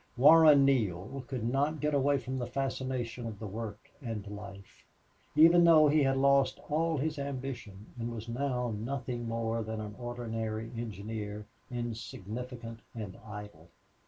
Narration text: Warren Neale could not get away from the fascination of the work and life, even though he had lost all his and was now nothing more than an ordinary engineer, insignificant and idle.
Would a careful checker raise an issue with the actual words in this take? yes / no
yes